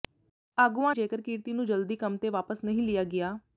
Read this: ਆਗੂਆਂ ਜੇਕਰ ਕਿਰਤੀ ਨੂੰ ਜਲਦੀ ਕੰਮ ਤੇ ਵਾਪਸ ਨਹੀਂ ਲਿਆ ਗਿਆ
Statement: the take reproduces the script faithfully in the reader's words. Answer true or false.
true